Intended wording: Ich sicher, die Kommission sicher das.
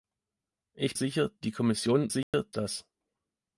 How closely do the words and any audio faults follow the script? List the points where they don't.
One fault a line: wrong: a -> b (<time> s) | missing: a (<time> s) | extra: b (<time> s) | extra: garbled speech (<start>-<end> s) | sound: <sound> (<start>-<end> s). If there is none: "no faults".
sound: dropout (2.2-2.3 s)